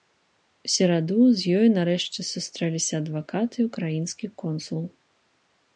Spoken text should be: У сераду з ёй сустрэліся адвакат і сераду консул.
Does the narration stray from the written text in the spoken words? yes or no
yes